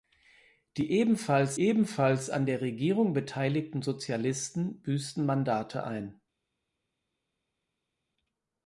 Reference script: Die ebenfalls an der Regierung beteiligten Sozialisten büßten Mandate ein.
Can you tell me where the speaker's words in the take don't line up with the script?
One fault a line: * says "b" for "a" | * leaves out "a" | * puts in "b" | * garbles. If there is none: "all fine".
* puts in "ebenfalls"